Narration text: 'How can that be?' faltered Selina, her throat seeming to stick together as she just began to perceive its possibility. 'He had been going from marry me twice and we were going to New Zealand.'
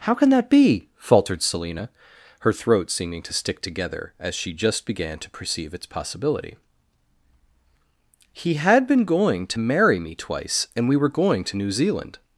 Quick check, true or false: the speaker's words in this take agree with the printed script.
false